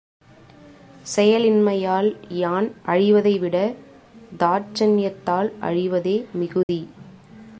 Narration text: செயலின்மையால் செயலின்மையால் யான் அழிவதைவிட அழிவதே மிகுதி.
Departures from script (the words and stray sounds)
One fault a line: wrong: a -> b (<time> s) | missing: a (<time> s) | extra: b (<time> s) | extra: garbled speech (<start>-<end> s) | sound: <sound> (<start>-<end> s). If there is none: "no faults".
missing: செயலின்மையால் (2.1 s)
extra: தாட்சண்யத்தால் (4.4 s)
sound: dropout (6.6-6.7 s)